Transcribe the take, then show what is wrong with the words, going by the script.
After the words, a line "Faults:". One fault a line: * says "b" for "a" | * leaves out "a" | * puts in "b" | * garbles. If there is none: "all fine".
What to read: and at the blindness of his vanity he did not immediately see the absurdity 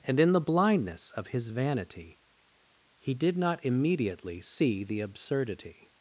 and in the blindness of his vanity he did not immediately see the absurdity
Faults:
* says "in" for "at"